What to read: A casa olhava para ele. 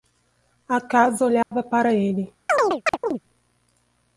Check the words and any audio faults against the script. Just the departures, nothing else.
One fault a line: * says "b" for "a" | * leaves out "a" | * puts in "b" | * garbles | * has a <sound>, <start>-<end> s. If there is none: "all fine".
* has a dropout, 1.4-1.5 s
* has a chirp, 2.5-3.2 s